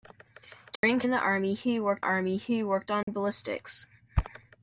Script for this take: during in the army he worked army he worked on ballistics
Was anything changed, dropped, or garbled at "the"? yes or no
no